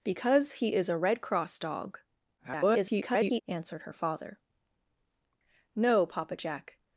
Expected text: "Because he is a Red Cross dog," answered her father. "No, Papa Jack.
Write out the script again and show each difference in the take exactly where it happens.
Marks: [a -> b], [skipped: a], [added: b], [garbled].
"Because he is a Red Cross dog," [garbled] answered her father. "No, Papa Jack.